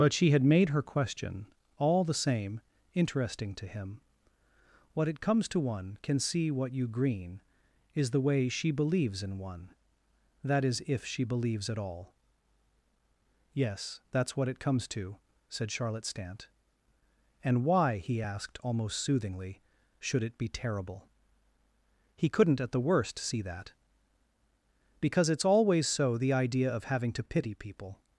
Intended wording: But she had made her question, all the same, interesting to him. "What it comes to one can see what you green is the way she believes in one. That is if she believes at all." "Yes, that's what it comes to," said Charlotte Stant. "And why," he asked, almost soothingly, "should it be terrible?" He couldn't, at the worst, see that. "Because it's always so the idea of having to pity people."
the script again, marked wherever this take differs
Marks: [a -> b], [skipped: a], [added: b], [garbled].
But she had made her question, all the same, interesting to him. "What it comes to one can see what you green is the way she believes in one. That is if she believes at all." "Yes, that's what it comes to," said Charlotte Stant. "And why," he asked, almost soothingly, "should it be terrible?" He couldn't, at the worst, see that. "Because it's always so the idea of having to pity people."